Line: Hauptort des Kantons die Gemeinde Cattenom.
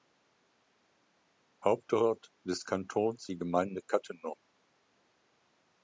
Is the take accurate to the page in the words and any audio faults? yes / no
yes